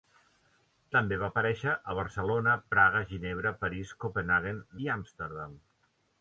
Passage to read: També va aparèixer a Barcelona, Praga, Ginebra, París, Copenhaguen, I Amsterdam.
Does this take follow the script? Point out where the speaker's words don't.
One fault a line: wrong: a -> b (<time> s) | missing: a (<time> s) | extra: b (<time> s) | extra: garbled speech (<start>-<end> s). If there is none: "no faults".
no faults